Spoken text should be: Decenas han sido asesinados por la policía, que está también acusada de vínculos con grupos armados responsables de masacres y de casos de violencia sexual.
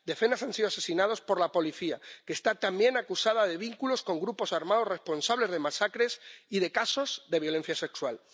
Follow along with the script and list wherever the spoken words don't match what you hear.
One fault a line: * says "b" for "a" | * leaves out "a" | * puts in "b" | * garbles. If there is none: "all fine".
all fine